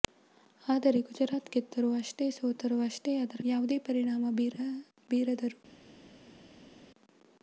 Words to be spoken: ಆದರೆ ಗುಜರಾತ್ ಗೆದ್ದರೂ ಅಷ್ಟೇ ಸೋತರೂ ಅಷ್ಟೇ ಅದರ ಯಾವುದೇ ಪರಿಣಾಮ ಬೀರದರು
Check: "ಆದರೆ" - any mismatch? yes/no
no